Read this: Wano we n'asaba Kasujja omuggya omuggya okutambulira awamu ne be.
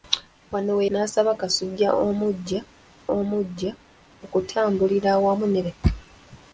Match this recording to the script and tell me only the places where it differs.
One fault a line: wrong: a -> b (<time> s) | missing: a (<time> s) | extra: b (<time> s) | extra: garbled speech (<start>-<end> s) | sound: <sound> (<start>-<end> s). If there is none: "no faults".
no faults